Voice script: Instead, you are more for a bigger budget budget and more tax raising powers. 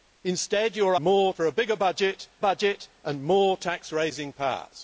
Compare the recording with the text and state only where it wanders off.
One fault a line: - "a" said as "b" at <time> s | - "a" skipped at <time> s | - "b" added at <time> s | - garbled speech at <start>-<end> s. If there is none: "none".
none